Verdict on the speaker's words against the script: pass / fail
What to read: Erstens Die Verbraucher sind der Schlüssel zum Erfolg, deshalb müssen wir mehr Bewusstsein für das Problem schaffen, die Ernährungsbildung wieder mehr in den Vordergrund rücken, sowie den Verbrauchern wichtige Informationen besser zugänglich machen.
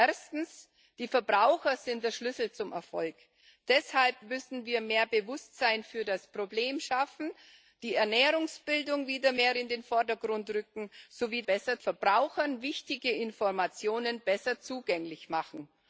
fail